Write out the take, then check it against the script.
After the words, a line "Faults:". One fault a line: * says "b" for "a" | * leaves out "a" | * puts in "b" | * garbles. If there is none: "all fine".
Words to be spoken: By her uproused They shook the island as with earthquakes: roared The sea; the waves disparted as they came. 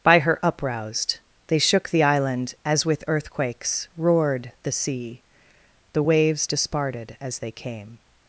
By her uproused They shook the island as with earthquakes: roared The sea; the waves disparted as they came.
Faults:
all fine